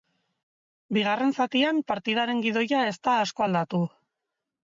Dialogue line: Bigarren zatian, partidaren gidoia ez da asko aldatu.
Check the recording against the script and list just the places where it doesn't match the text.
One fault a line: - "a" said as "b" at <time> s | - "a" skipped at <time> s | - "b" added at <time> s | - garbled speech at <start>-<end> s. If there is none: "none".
none